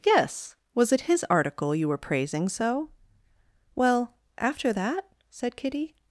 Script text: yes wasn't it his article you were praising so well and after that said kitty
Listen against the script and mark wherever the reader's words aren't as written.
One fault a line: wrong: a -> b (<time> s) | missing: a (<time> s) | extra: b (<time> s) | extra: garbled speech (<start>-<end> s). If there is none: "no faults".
wrong: wasn't -> was (0.7 s)
missing: and (4.2 s)